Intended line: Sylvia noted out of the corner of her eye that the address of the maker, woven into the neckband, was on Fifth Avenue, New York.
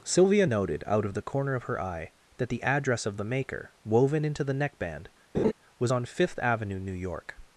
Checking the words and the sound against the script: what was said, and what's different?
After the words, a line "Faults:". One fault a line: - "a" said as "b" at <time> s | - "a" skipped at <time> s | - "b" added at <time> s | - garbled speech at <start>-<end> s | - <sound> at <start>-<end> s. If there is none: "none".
Sylvia noted out of the corner of her eye that the address of the maker, woven into the neckband, was on Fifth Avenue, New York.
Faults:
- laugh at 5.3-5.5 s